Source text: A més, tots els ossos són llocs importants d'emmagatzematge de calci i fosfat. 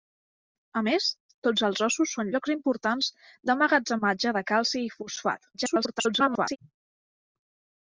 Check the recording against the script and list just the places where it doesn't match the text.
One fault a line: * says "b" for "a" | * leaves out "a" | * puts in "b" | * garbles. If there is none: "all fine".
* garbles